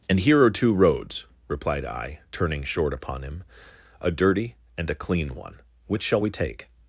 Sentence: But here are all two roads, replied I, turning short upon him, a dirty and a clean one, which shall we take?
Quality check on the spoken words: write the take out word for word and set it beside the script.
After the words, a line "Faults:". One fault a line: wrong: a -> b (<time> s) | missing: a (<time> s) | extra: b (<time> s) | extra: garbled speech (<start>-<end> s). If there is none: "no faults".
And here are two roads, replied I, turning short upon him, a dirty and a clean one, which shall we take?
Faults:
wrong: But -> And (0.1 s)
missing: all (0.5 s)